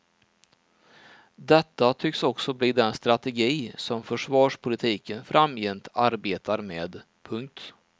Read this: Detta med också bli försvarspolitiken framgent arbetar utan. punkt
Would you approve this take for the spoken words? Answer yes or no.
no